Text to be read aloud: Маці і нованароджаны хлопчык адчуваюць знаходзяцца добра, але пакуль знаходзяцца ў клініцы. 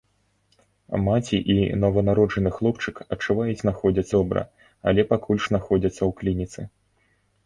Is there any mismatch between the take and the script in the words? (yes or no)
no